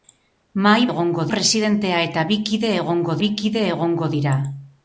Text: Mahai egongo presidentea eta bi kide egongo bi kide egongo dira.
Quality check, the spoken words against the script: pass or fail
pass